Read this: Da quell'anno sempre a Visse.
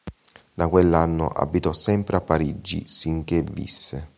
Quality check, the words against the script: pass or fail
fail